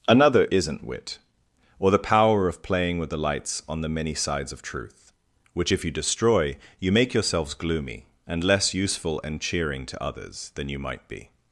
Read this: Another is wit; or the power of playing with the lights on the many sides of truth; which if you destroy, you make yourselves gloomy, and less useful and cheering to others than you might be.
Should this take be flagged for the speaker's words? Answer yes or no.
yes